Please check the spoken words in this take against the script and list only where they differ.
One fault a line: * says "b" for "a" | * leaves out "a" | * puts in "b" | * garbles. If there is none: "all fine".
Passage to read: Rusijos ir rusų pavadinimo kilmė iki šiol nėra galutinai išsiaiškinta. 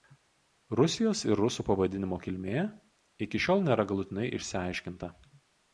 all fine